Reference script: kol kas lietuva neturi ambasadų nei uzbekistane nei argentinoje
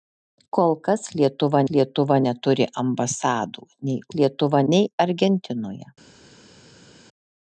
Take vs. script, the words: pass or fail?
fail